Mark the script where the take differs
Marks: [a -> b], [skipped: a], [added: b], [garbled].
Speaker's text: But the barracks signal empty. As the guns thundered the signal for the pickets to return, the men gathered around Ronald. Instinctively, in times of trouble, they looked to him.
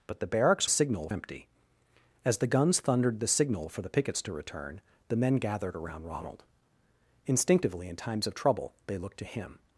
But the barracks signal empty. As the guns thundered the signal for the pickets to return, the men gathered around Ronald. Instinctively, in times of trouble, they looked to him.